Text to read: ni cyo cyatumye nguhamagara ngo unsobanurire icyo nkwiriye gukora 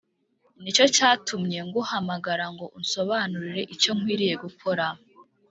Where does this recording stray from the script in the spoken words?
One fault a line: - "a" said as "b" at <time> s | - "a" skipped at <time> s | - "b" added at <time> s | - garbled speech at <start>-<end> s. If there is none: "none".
none